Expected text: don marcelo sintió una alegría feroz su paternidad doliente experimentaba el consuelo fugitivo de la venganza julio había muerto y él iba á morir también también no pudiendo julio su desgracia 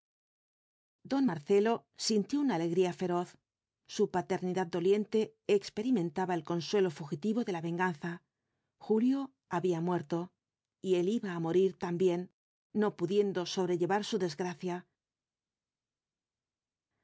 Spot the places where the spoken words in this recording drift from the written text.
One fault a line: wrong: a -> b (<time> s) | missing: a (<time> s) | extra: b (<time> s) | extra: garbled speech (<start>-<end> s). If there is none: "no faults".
missing: también (12.3 s)
wrong: julio -> sobrellevar (13.5 s)